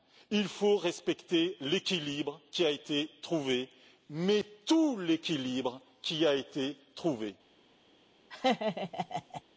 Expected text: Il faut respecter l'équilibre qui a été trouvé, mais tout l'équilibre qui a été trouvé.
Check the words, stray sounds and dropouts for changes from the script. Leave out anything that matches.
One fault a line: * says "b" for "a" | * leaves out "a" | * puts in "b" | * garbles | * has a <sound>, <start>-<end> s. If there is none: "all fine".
* has a laugh, 8.3-9.4 s